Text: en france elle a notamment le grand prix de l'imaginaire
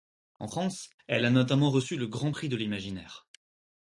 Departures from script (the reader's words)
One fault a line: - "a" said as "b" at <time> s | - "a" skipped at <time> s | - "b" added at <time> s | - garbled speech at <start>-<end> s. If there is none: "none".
- "reçu" added at 1.7 s